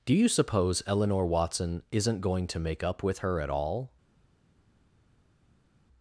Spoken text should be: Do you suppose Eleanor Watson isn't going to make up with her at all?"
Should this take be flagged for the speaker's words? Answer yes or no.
no